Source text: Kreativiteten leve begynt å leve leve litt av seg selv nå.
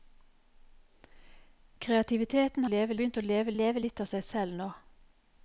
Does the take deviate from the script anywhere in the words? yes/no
no